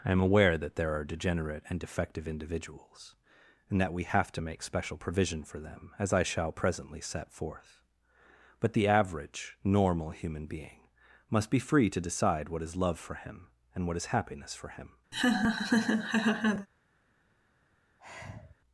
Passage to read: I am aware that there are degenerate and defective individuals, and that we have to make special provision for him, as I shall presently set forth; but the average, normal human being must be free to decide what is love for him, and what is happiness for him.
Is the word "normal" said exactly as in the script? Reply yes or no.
yes